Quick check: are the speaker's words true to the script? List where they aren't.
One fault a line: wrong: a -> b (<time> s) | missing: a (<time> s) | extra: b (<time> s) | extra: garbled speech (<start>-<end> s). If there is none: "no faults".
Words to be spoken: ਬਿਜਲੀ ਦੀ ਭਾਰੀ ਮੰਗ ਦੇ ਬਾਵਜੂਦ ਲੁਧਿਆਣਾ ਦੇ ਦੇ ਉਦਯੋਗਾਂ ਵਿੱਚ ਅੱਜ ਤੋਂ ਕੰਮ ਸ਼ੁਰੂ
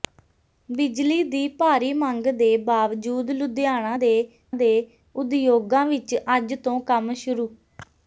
no faults